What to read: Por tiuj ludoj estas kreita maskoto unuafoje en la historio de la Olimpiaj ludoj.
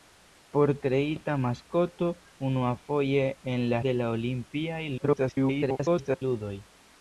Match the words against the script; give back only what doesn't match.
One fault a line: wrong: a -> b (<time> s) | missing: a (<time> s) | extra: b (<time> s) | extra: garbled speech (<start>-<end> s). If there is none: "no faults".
missing: tiuj ludoj estas (0.7 s)
missing: historio (3.8 s)
extra: garbled speech (5.0-6.2 s)